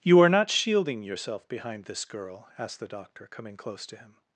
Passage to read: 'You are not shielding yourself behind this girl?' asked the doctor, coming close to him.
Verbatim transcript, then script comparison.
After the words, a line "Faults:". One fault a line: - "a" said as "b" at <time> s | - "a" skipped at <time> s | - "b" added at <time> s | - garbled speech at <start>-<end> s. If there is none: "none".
'You are not shielding yourself behind this girl?' asked the doctor, coming close to him.
Faults:
none